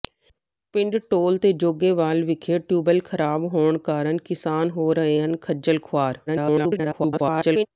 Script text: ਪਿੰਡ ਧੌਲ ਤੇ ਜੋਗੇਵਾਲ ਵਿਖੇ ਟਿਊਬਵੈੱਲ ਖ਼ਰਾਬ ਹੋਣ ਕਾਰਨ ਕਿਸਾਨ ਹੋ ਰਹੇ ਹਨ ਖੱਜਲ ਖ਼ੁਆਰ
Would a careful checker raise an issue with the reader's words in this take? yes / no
yes